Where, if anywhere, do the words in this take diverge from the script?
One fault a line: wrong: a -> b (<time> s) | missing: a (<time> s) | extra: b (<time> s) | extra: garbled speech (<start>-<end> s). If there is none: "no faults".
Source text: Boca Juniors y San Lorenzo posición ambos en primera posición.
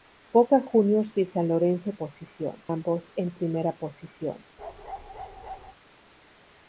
no faults